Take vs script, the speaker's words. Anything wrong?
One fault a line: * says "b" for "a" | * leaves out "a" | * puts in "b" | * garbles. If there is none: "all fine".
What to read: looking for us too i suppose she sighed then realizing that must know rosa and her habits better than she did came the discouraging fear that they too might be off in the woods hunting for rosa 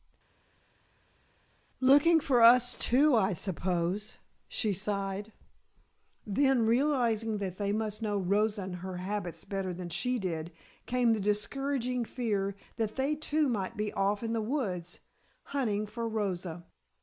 * puts in "they"